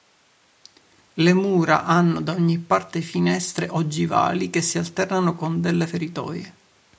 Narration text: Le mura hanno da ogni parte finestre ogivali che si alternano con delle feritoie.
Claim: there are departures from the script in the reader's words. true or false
false